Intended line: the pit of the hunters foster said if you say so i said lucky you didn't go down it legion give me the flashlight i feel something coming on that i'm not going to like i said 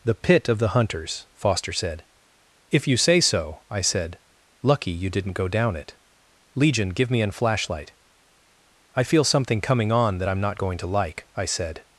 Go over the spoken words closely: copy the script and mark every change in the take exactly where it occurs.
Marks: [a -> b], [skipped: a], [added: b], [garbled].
the pit of the hunters foster said if you say so i said lucky you didn't go down it legion give me [the -> an] flashlight i feel something coming on that i'm not going to like i said